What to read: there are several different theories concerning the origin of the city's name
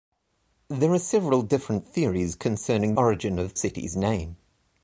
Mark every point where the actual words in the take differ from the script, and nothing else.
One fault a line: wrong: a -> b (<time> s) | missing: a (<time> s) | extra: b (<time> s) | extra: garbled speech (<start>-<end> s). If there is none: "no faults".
missing: the (3.0 s)
missing: the (3.6 s)